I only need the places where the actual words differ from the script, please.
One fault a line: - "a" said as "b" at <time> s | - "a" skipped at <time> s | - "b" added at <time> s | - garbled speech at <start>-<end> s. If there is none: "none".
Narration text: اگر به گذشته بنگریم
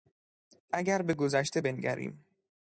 none